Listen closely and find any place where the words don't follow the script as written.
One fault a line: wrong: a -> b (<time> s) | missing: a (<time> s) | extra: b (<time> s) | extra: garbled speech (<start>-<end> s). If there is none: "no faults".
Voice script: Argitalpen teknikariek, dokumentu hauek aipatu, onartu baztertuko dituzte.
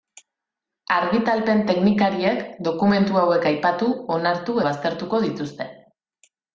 no faults